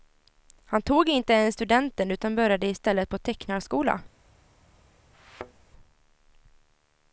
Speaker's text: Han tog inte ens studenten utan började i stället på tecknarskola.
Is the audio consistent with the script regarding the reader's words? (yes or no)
yes